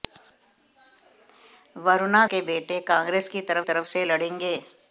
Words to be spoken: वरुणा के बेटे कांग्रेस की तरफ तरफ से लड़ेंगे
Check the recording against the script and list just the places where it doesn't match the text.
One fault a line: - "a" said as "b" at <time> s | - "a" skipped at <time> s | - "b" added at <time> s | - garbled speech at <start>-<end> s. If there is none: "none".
none